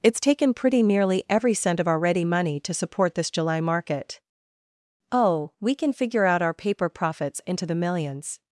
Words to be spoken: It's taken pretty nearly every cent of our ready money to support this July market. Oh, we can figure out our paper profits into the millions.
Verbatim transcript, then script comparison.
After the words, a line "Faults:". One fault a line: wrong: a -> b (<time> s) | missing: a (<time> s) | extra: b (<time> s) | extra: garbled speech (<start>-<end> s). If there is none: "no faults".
It's taken pretty nearly every cent of our ready money to support this July market. Oh, we can figure out our paper profits into the millions.
Faults:
no faults